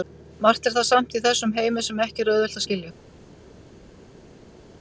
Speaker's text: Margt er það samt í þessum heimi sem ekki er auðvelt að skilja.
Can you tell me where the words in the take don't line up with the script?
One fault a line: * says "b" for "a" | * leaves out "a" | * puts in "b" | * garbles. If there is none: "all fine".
all fine